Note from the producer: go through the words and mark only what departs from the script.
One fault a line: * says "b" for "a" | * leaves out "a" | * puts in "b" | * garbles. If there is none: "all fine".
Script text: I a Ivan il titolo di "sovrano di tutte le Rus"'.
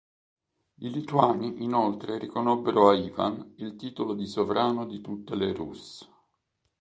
* puts in "lituani inoltre riconobbero"